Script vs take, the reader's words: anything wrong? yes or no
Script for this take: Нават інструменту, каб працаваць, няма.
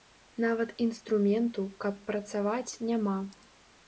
no